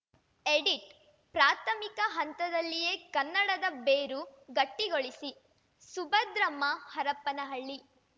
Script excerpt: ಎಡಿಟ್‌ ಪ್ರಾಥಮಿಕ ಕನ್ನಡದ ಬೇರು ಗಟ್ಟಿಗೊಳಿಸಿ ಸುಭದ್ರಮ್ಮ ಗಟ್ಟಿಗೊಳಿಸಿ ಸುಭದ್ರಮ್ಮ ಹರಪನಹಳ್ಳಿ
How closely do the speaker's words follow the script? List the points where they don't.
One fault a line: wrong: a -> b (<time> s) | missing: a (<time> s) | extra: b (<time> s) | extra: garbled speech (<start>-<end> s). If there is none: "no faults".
extra: ಹಂತದಲ್ಲಿಯೇ (2.1 s)
missing: ಗಟ್ಟಿಗೊಳಿಸಿ ಸುಭದ್ರಮ್ಮ (6.6 s)